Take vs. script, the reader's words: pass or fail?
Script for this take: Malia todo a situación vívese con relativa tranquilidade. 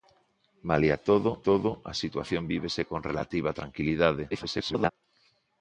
fail